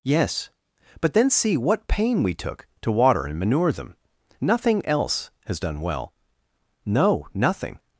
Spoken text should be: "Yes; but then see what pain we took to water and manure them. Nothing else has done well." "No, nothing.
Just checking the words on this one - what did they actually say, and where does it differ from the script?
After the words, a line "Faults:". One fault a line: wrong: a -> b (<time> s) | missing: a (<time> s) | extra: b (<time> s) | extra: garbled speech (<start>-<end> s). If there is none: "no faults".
"Yes; but then see what pain we took to water and manure them. Nothing else has done well." "No, nothing.
Faults:
no faults